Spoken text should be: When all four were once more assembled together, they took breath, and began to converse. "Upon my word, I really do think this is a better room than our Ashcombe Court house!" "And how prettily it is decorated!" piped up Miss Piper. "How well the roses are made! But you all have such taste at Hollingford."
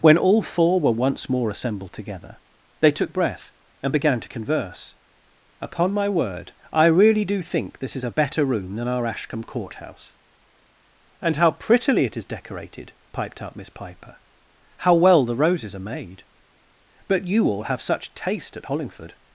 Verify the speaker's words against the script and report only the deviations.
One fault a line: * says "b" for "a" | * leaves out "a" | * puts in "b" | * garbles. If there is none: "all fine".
all fine